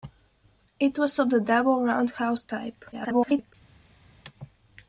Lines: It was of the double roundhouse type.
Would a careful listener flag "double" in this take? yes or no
no